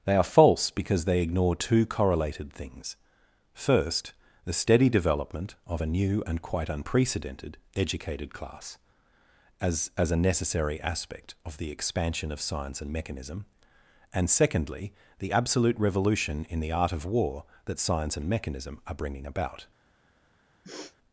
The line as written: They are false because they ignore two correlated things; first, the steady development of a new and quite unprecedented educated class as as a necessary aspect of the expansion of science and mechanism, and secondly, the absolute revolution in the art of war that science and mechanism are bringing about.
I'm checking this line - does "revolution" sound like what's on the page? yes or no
yes